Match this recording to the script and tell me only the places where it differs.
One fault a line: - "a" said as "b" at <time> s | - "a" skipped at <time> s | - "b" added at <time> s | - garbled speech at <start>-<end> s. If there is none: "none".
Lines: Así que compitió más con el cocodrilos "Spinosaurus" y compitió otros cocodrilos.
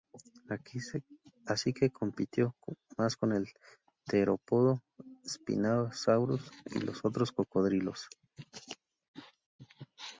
- "cocodrilos" said as "terópodo" at 4.0 s
- "compitió" said as "los" at 6.8 s